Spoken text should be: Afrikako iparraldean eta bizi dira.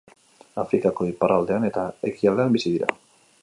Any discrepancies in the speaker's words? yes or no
yes